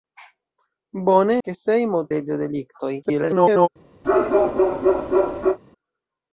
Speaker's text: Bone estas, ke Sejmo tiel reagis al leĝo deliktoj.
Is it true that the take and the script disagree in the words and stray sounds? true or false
true